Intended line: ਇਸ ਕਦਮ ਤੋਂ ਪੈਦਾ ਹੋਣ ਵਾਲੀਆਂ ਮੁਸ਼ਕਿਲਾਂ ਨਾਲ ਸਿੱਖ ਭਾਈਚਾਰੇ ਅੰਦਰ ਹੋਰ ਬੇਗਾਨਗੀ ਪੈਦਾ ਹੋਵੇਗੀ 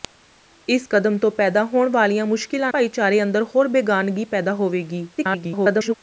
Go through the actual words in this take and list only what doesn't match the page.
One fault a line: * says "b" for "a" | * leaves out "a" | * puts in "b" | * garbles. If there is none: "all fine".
* leaves out "ਨਾਲ ਸਿੱਖ"
* garbles